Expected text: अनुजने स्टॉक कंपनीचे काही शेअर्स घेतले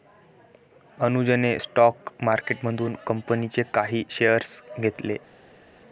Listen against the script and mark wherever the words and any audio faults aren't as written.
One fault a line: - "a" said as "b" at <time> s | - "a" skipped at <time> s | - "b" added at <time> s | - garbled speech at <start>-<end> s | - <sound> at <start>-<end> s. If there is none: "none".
- "मार्केटमधून" added at 2.2 s